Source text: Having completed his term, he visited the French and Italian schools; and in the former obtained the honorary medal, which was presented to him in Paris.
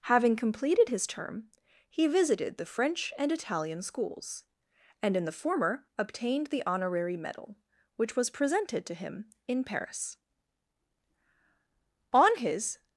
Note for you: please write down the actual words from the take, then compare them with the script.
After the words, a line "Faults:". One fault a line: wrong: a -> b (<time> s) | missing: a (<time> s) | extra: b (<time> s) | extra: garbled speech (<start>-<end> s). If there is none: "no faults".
Having completed his term, he visited the French and Italian schools; and in the former obtained the honorary medal, which was presented to him in Paris. On his
Faults:
extra: On his (12.1 s)